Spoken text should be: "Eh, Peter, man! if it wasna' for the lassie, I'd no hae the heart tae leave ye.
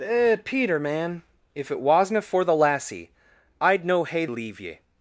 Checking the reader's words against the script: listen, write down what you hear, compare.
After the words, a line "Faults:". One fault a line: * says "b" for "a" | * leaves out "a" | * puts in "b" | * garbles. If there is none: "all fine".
"Eh, Peter, man! if it wasna' for the lassie, I'd no hae leave ye.
Faults:
* leaves out "the heart tae"